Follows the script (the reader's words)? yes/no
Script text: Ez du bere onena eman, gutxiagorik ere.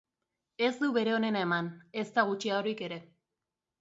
no